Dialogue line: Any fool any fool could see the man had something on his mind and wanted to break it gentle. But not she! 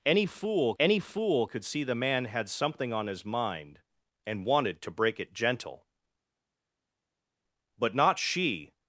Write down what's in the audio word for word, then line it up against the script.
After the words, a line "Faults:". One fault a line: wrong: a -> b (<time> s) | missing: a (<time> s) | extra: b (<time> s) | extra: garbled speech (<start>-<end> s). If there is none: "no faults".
Any fool any fool could see the man had something on his mind and wanted to break it gentle. But not she!
Faults:
no faults